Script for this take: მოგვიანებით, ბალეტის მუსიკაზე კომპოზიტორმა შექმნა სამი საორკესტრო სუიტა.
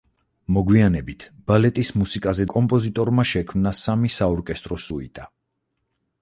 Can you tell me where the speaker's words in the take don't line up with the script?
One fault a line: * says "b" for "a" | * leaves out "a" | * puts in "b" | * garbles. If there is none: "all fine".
all fine